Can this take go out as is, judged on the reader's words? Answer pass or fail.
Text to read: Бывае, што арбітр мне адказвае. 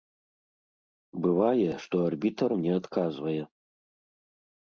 pass